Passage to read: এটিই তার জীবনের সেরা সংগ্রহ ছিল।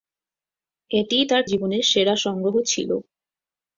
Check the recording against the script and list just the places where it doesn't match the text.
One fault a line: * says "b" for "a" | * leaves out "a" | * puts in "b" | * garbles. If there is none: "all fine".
all fine